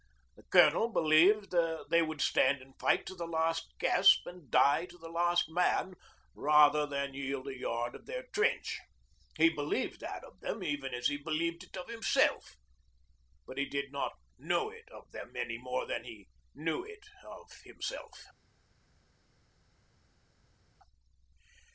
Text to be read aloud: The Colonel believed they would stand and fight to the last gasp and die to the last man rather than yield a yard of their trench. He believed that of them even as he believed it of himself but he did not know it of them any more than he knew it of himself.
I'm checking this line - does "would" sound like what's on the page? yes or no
yes